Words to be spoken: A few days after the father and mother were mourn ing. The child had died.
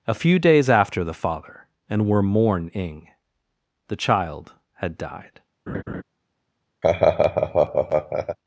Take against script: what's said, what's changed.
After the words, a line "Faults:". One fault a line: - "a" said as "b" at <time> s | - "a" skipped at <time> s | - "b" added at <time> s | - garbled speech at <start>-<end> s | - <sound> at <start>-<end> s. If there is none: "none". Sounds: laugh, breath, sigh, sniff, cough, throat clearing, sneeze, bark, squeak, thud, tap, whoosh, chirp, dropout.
A few days after the father and were mourn ing. The child had died.
Faults:
- "mother" skipped at 2.1 s
- laugh at 5.7-6.0 s
- laugh at 6.8-8.4 s